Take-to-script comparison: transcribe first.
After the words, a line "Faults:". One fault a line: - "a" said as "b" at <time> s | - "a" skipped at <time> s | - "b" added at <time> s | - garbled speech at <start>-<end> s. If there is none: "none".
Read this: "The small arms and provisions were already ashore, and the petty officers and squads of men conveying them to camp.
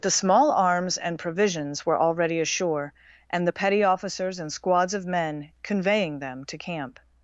"The small arms and provisions were already ashore, and the petty officers and squads of men conveying them to camp.
Faults:
none